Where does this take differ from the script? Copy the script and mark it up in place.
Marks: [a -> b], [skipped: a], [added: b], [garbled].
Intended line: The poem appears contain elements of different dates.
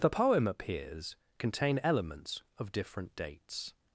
The poem appears contain elements of different dates.